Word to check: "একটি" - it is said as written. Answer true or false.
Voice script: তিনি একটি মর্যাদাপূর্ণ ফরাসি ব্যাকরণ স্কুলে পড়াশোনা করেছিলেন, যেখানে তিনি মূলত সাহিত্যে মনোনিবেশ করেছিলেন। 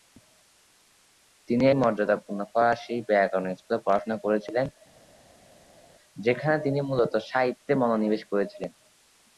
false